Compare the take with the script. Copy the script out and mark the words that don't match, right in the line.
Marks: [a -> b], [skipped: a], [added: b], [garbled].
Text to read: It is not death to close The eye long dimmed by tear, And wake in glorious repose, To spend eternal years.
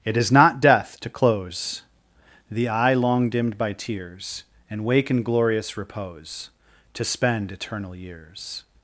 It is not death to close The eye long dimmed by [tear, -> tears] And wake in glorious repose, To spend eternal years.